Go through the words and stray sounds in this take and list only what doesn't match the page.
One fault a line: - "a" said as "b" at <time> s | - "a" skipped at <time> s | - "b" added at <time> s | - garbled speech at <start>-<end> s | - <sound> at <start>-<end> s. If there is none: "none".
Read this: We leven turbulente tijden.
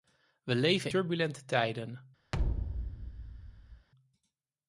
- thud at 2.3-3.9 s